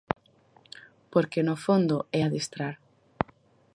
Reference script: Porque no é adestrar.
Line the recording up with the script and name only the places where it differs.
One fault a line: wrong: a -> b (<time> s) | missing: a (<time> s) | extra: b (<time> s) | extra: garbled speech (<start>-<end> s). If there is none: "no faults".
extra: fondo (1.6 s)